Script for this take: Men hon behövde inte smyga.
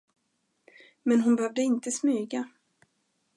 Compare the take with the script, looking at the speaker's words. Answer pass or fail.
pass